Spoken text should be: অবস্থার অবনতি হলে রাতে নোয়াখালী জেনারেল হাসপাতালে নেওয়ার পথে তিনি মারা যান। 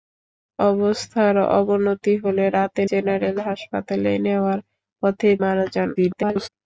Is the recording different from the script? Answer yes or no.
yes